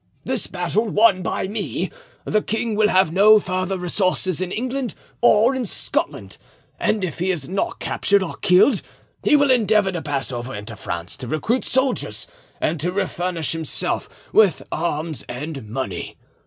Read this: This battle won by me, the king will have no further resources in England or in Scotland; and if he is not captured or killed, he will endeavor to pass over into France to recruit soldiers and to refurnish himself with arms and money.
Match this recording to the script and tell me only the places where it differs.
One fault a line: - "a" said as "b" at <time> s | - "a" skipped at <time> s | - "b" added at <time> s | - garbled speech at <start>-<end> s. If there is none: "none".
none